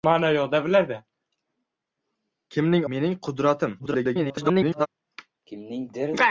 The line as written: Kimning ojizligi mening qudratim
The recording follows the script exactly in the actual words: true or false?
false